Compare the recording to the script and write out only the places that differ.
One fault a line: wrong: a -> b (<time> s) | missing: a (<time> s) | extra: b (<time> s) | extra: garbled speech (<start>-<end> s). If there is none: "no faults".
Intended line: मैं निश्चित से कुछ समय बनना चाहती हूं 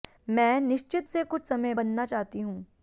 no faults